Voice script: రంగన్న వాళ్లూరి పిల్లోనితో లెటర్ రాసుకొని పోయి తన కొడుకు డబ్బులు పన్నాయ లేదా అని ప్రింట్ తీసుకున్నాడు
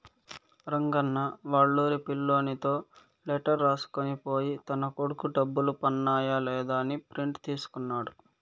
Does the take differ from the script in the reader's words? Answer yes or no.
no